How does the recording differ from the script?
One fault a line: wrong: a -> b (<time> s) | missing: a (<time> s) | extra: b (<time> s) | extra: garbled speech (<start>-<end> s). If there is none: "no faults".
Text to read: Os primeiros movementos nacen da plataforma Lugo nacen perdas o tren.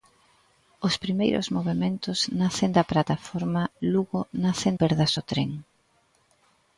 no faults